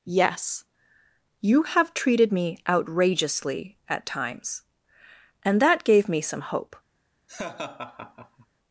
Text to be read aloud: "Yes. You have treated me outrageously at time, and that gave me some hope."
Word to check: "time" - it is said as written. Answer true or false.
false